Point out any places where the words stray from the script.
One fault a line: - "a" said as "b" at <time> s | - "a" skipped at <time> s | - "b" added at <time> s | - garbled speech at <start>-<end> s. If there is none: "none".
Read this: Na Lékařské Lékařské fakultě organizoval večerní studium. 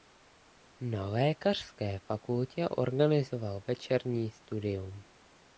- "Lékařské" skipped at 2.0 s